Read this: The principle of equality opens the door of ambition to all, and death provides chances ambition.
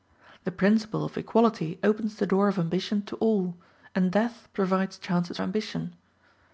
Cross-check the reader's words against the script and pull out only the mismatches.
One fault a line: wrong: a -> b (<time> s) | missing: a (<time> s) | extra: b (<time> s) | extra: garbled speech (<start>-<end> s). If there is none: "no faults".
no faults